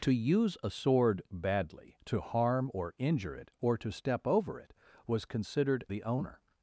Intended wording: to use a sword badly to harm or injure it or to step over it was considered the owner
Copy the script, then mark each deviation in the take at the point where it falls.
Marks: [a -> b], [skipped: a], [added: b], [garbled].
to use a sword badly to harm or injure it or to step over it was considered the owner